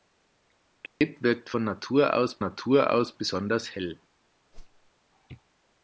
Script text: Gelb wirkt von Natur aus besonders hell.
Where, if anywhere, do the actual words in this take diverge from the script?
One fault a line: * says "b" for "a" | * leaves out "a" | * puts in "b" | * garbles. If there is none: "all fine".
* puts in "Natur aus"